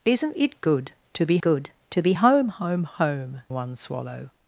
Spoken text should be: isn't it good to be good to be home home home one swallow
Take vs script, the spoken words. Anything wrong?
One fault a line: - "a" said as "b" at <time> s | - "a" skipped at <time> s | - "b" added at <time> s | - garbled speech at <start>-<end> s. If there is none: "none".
none